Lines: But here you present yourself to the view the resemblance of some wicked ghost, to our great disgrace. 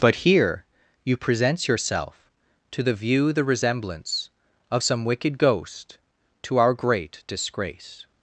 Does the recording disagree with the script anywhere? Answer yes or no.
yes